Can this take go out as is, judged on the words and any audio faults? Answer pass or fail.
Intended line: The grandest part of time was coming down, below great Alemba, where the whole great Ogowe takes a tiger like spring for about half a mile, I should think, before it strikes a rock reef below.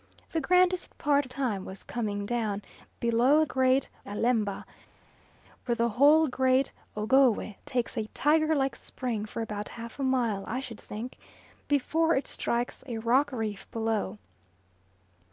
pass